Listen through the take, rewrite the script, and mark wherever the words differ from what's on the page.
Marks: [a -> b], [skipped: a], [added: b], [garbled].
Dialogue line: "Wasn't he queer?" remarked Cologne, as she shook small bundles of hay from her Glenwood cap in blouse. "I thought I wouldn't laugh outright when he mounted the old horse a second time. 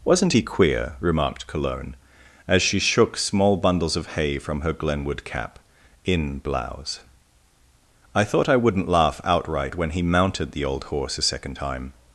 "Wasn't he queer?" remarked Cologne, as she shook small bundles of hay from her Glenwood cap in blouse. "I thought I wouldn't laugh outright when he mounted the old horse a second time.